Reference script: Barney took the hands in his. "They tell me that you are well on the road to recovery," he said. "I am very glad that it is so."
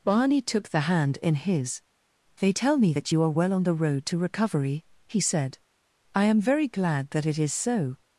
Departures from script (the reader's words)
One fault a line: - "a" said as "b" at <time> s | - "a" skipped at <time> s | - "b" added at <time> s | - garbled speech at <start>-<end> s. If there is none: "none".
- "hands" said as "hand" at 0.8 s